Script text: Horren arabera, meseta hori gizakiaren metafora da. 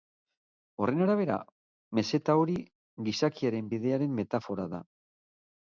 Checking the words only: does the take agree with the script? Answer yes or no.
no